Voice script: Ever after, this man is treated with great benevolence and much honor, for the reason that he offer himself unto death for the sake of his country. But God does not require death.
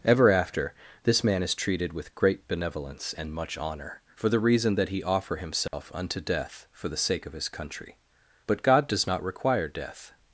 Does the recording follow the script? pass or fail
pass